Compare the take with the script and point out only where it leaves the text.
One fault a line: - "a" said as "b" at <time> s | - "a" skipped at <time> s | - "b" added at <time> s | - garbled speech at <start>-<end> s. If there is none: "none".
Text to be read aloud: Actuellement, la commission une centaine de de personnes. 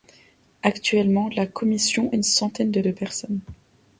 none